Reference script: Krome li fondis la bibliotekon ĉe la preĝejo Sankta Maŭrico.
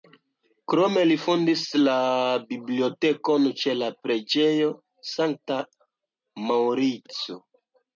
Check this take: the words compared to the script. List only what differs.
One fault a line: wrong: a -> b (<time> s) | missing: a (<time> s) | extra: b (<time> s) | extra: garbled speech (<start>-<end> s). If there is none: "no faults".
no faults